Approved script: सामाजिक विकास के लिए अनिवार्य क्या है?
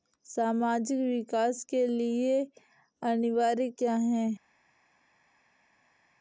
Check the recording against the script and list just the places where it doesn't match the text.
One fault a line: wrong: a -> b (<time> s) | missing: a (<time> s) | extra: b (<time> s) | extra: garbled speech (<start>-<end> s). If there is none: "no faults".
no faults